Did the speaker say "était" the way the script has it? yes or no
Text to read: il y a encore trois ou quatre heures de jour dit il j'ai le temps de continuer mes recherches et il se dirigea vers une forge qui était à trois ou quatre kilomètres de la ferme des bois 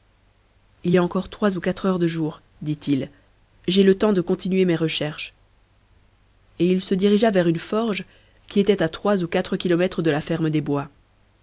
yes